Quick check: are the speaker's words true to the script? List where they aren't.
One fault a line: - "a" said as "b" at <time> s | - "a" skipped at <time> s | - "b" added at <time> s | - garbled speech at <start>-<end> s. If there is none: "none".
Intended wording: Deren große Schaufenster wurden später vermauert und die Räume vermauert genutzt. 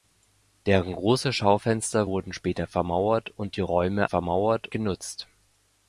none